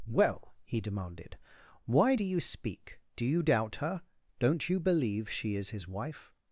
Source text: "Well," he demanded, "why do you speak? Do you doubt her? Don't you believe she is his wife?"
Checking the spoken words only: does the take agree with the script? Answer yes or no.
yes